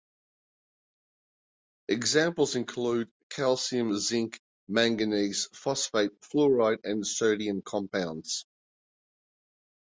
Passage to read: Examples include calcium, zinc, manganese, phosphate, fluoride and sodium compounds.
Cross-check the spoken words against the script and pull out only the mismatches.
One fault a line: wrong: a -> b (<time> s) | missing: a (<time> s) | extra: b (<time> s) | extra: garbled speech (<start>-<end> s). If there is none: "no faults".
no faults